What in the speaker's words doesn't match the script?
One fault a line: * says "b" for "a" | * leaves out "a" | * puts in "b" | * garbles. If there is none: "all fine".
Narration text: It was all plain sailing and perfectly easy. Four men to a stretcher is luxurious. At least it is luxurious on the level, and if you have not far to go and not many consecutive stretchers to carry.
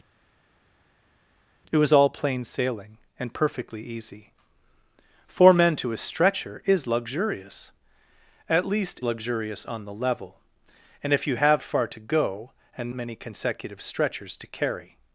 * leaves out "it is"
* leaves out "not"
* leaves out "not"